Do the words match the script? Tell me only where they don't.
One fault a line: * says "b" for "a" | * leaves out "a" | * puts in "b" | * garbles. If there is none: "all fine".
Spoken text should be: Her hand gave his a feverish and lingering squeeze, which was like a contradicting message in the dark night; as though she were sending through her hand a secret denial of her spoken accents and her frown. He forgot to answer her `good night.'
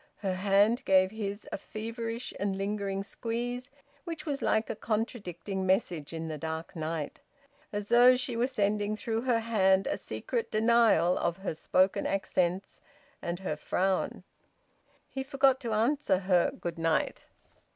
all fine